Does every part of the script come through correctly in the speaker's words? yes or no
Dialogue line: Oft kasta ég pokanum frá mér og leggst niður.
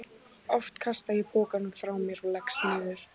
yes